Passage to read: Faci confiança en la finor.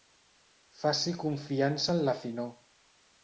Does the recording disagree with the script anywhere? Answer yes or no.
no